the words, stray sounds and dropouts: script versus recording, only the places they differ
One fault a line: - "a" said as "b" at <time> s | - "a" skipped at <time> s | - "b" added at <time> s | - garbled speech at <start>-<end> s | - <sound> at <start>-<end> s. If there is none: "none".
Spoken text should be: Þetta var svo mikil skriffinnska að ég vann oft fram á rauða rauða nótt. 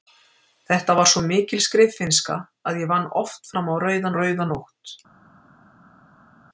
none